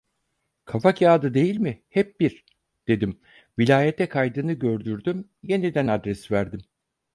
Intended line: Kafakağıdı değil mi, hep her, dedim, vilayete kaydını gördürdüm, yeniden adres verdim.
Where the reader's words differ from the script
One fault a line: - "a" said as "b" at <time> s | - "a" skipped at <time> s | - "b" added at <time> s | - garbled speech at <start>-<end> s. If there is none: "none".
- "her" said as "bir" at 2.2 s